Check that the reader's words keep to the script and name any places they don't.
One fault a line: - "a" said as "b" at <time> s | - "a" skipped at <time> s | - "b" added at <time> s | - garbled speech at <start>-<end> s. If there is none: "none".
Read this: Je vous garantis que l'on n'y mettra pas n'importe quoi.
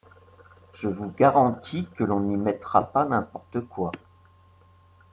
none